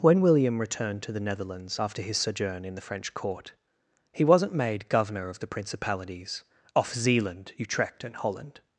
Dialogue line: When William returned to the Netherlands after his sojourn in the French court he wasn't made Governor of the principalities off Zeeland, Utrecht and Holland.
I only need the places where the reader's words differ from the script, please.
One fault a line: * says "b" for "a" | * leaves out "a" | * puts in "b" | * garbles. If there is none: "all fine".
all fine